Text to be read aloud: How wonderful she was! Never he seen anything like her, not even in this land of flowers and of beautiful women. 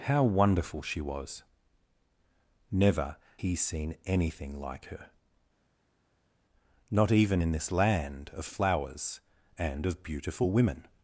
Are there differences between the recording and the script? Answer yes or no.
no